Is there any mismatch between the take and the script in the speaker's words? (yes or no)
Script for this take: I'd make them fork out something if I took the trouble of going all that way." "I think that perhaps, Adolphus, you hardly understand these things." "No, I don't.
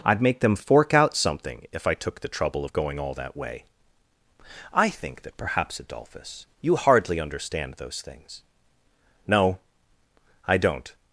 yes